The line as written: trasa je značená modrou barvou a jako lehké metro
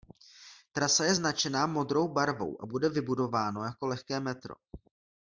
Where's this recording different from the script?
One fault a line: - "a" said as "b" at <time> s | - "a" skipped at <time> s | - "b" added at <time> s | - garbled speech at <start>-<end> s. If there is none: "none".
- "bude vybudováno" added at 2.7 s